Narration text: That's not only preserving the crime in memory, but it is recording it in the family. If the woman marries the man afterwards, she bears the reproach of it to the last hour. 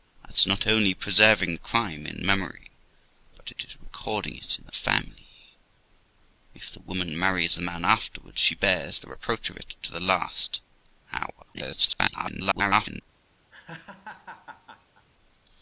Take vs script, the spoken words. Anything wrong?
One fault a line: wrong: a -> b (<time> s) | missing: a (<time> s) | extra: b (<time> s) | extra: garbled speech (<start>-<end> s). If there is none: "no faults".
extra: garbled speech (11.5-13.0 s)